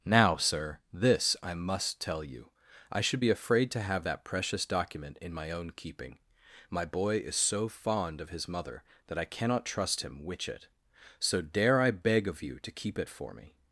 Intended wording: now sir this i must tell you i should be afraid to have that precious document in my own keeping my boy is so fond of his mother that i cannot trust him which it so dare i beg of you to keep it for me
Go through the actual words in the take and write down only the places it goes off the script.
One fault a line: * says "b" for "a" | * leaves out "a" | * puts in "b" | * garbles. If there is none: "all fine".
all fine